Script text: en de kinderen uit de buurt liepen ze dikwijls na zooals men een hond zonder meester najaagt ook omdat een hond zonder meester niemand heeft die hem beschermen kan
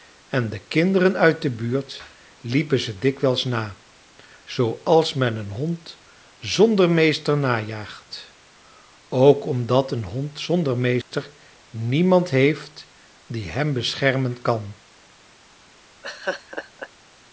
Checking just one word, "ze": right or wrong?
right